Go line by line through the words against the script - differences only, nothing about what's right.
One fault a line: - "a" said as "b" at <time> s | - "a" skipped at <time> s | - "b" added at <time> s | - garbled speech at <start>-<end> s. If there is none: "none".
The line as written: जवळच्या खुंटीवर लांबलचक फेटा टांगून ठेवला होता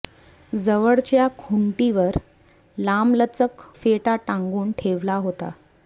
none